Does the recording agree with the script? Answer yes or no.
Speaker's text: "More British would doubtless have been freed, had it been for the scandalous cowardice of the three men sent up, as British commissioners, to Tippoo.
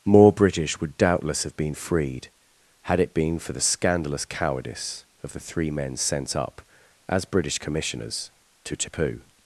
yes